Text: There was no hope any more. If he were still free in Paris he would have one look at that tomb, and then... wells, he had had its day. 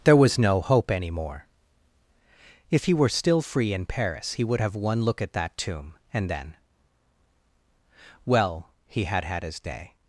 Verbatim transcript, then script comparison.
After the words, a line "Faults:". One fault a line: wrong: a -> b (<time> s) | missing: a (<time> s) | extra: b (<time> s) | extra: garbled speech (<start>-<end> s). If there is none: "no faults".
There was no hope any more. If he were still free in Paris he would have one look at that tomb, and then... well, he had had his day.
Faults:
wrong: wells -> well (8.2 s)
wrong: its -> his (9.4 s)